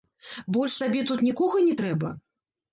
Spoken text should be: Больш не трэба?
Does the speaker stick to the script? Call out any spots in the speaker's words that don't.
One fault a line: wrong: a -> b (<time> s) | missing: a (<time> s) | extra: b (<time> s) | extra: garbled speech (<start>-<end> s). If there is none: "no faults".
extra: табе тут нікога (0.8 s)